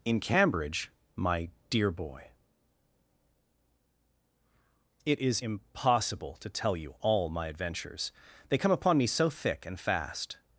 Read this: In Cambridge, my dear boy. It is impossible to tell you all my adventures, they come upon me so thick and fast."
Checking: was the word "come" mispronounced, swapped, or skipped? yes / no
no